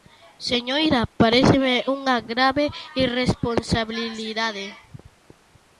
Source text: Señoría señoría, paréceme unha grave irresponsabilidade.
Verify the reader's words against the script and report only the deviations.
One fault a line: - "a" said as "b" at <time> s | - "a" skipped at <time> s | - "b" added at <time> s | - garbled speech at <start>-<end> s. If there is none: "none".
- "señoría" skipped at 1.0 s